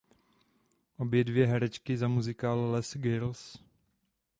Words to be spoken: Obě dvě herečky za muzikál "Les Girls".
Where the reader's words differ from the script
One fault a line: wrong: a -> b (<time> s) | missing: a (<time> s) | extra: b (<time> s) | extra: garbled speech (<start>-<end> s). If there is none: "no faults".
no faults